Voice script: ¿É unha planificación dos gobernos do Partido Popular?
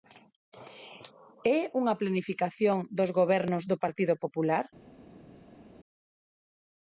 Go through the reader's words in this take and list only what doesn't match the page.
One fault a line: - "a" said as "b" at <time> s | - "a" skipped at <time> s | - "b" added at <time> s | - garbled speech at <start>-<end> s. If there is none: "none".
none